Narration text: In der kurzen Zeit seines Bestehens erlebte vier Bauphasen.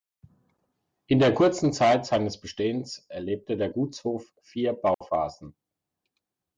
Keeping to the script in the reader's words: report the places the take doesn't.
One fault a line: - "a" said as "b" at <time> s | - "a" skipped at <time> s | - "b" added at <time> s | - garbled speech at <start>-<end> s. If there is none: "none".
- "der Gutshof" added at 3.6 s